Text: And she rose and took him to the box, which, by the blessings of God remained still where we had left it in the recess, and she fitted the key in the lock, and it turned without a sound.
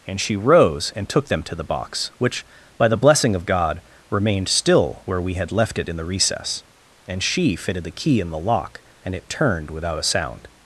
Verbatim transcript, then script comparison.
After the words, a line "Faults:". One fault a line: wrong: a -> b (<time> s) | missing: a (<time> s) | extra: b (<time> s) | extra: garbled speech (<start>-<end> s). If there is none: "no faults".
And she rose and took them to the box, which, by the blessing of God remained still where we had left it in the recess, and she fitted the key in the lock, and it turned without a sound.
Faults:
wrong: him -> them (1.3 s)
wrong: blessings -> blessing (3.0 s)